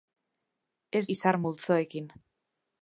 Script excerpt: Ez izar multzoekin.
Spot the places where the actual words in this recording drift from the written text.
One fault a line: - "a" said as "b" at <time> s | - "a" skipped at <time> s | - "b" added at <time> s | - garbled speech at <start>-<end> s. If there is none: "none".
none